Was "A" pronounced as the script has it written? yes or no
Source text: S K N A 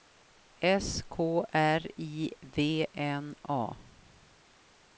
yes